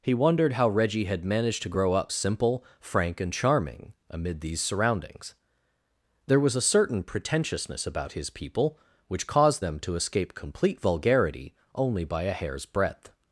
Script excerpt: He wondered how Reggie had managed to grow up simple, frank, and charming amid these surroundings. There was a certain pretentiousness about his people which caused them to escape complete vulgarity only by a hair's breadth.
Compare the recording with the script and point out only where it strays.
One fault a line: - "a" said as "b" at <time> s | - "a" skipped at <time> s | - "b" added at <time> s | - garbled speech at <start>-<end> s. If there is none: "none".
none